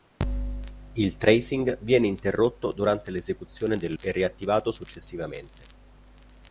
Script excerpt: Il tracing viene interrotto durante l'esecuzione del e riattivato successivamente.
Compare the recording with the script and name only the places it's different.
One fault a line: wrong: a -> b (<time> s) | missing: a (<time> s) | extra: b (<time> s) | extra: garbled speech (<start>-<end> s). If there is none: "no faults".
no faults